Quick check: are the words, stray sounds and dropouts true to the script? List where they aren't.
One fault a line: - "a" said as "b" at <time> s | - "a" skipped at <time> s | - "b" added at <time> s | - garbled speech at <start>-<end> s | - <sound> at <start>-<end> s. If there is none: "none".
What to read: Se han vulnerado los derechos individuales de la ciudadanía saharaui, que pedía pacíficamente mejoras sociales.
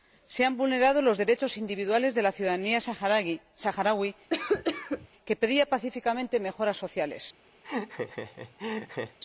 - cough at 4.3-5.1 s
- laugh at 7.6-9.2 s